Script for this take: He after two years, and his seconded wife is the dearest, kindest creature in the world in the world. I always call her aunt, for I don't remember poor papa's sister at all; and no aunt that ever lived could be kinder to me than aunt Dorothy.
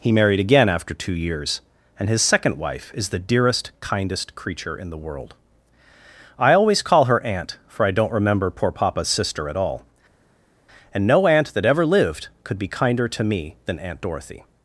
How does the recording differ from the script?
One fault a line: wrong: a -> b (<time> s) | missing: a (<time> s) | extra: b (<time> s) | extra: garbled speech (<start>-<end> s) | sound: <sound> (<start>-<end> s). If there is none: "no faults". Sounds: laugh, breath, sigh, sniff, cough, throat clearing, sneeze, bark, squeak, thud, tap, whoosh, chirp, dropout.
extra: married again (0.1 s)
wrong: seconded -> second (2.2 s)
missing: in the world (5.3 s)